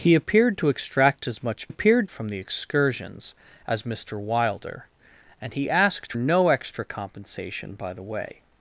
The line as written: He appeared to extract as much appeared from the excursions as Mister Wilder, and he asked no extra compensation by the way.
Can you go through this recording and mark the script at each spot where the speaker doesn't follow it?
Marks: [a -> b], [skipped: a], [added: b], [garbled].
He appeared to extract as much appeared from the excursions as Mister Wilder, and he asked no extra compensation by the way.